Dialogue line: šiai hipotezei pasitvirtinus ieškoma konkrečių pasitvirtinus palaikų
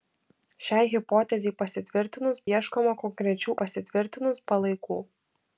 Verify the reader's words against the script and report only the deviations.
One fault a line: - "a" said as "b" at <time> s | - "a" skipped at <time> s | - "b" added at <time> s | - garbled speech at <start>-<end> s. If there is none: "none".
none